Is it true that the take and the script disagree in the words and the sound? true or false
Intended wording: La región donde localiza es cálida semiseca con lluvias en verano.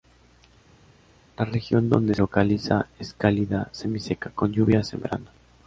false